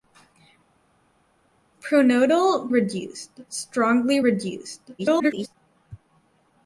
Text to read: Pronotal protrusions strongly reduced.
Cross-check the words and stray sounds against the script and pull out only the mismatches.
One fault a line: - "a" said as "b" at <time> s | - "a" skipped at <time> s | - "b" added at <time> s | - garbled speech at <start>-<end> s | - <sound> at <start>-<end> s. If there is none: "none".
- "protrusions" said as "reduced" at 2.7 s
- garbled speech at 5.0-5.6 s